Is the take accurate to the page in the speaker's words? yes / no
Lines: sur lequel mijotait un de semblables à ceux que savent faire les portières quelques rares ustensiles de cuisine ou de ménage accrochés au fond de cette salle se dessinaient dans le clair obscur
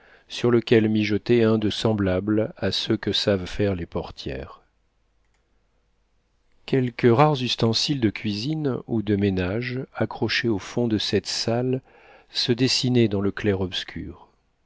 yes